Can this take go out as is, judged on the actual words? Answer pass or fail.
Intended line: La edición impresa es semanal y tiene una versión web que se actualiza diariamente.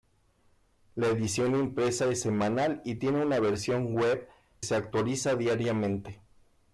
fail